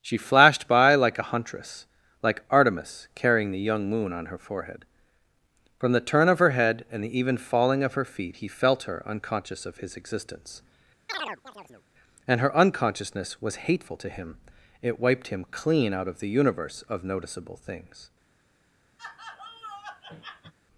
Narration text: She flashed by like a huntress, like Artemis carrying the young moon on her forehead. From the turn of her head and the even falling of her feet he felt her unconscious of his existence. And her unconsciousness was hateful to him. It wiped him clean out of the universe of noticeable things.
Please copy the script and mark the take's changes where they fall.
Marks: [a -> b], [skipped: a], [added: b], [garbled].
She flashed by like a huntress, like Artemis carrying the young moon on her forehead. From the turn of her head and the even falling of her feet he felt her unconscious of his existence. And her unconsciousness was hateful to him. It wiped him clean out of the universe of noticeable things.